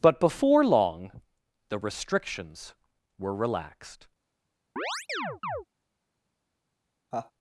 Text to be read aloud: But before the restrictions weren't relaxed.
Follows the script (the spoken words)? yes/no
no